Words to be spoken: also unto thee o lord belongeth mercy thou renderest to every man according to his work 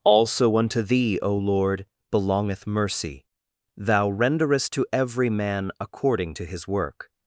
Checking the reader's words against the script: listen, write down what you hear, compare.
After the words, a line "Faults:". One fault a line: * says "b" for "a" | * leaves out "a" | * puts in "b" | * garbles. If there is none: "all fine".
also unto thee o lord belongeth mercy thou renderest to every man according to his work
Faults:
all fine